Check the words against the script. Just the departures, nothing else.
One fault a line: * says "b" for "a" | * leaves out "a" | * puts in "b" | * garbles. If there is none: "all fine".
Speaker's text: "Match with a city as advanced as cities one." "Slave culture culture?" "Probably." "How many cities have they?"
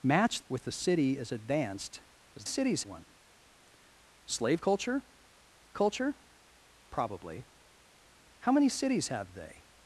all fine